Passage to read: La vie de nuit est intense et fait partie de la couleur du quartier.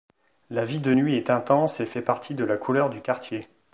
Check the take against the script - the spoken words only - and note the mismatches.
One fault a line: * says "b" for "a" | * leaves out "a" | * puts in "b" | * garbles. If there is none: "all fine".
all fine